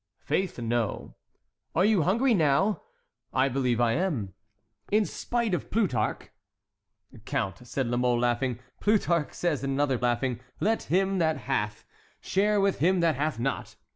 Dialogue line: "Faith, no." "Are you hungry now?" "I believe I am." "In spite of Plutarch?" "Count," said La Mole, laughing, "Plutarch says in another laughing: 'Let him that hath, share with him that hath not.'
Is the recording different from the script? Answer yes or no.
no